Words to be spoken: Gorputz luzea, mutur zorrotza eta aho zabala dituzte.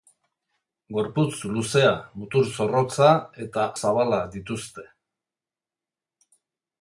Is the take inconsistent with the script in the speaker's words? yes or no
yes